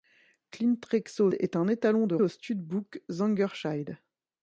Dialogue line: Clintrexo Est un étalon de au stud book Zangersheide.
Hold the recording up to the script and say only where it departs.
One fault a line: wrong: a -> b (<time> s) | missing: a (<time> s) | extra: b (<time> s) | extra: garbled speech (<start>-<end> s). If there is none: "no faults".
no faults